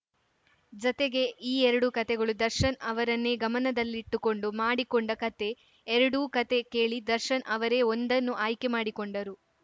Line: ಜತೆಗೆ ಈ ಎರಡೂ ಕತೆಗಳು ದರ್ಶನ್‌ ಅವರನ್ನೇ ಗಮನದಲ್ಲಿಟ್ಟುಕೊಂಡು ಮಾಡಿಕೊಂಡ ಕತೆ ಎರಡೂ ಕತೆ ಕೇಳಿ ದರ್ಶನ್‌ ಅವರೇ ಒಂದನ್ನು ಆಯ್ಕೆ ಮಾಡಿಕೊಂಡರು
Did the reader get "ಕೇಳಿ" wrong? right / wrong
right